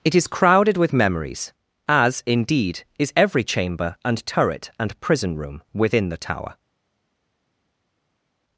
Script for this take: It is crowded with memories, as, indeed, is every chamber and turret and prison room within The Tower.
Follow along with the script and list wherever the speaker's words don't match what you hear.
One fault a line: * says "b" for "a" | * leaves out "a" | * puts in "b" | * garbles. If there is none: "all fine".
all fine